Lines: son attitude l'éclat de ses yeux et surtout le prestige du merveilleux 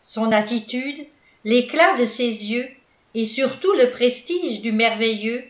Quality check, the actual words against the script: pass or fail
pass